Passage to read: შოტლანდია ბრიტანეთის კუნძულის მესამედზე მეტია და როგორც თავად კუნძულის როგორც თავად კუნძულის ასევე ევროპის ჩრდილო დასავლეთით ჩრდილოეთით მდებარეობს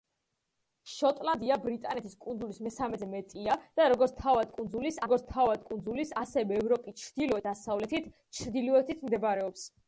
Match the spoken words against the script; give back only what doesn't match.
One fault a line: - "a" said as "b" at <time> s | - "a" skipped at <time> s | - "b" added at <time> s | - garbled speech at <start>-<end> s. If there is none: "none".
none